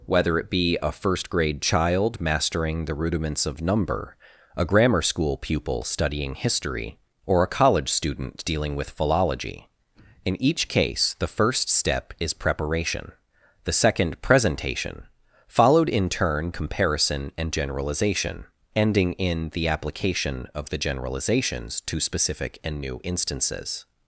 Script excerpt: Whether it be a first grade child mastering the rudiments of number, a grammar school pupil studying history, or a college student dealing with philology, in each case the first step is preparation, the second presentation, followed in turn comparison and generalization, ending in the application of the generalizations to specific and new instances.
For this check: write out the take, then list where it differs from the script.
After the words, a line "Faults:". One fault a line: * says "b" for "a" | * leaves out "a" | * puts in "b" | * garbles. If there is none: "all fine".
Whether it be a first grade child mastering the rudiments of number, a grammar school pupil studying history, or a college student dealing with philology, in each case the first step is preparation, the second presentation, followed in turn comparison and generalization, ending in the application of the generalizations to specific and new instances.
Faults:
all fine